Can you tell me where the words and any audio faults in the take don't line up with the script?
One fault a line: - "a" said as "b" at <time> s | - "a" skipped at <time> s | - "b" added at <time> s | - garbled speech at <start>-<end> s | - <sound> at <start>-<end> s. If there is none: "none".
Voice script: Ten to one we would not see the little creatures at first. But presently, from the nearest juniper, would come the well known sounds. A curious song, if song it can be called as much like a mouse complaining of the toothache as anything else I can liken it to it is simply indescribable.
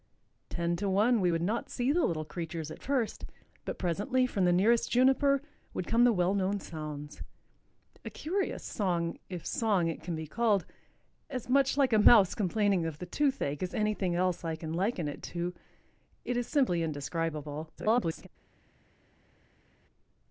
- garbled speech at 17.8-18.3 s